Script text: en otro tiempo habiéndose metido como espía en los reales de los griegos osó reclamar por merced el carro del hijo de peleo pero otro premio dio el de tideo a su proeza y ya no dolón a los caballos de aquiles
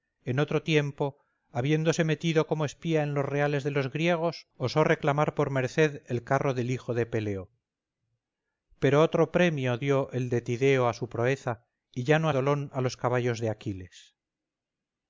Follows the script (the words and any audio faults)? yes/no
yes